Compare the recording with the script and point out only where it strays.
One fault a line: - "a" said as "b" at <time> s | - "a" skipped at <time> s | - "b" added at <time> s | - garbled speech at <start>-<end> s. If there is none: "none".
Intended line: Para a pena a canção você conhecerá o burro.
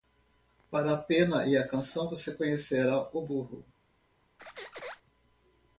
- "e" added at 1.4 s